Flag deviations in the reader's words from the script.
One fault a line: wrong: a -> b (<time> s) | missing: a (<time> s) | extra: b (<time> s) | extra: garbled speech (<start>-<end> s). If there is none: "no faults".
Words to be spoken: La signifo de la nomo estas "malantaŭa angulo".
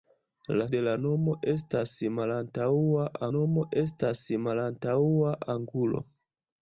missing: signifo (0.7 s)
extra: nomo estas malantaŭa (3.4 s)